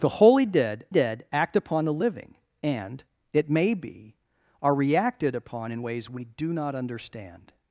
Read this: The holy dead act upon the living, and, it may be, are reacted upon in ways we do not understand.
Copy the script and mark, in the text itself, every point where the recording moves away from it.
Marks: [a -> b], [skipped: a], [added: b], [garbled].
The holy dead [added: dead] act upon the living, and, it may be, are reacted upon in ways we do not understand.